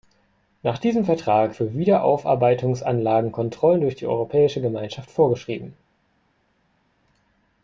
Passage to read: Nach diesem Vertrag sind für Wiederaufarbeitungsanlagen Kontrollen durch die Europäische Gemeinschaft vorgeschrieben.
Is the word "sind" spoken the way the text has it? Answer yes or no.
no